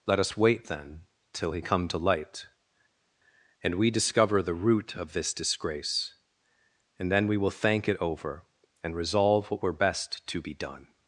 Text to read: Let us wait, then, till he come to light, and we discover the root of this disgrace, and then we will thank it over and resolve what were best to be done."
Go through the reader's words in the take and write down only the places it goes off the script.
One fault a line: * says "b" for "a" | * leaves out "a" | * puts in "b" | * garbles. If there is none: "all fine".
all fine